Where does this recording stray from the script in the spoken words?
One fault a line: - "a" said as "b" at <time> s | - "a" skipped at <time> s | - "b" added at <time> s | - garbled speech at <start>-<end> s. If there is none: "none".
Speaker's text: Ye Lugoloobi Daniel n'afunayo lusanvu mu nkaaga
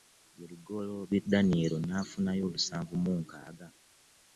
none